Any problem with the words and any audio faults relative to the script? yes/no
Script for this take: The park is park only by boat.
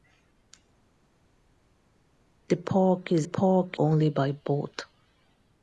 no